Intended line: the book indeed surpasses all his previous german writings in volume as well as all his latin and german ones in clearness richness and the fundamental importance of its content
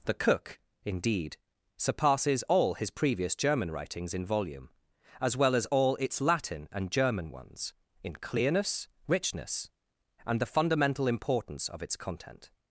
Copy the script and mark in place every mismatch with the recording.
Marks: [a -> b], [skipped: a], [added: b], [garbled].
the [book -> cook] indeed surpasses all his previous german writings in volume as well as all [his -> its] latin and german ones in clearness richness and the fundamental importance of its content